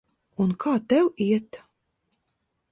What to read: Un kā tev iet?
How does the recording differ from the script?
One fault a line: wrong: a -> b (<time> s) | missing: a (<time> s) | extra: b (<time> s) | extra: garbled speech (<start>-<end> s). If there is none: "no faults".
no faults